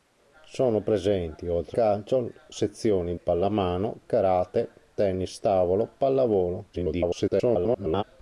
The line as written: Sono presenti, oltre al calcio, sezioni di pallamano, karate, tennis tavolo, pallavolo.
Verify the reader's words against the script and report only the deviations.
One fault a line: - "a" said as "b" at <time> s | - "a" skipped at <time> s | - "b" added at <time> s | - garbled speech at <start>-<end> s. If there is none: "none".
- "al" skipped at 1.8 s
- "di" skipped at 3.2 s
- garbled speech at 6.7-8.0 s